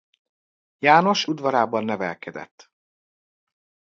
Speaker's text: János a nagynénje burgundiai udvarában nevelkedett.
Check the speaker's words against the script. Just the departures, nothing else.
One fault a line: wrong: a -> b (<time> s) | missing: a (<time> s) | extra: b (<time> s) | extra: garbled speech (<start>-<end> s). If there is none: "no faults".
missing: a nagynénje burgundiai (1.2 s)